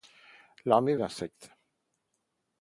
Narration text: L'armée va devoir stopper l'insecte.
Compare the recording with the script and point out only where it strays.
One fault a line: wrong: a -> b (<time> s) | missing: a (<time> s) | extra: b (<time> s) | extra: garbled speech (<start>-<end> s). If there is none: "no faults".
missing: va devoir stopper (0.9 s)